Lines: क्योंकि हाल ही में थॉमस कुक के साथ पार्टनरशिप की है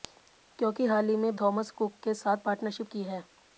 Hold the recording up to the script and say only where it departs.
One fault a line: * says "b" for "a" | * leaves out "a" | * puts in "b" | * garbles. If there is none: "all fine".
all fine